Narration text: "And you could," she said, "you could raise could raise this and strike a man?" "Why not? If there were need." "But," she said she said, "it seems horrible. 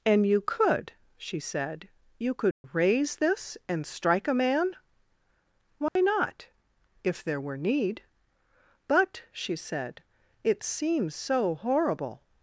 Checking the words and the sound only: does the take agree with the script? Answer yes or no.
no